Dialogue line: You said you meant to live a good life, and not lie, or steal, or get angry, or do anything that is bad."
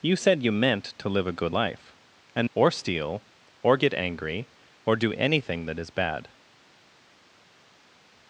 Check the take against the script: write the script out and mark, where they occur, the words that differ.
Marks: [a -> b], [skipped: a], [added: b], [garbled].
You said you meant to live a good life, and [skipped: not lie,] or steal, or get angry, or do anything that is bad."